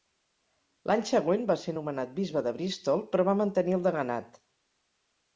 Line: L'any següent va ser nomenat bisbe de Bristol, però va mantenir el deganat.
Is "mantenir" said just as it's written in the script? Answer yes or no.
yes